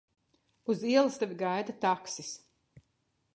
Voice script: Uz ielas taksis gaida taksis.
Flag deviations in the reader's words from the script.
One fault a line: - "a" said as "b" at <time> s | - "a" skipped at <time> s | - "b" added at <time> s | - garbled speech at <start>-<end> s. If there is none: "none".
- "taksis" said as "tevi" at 1.2 s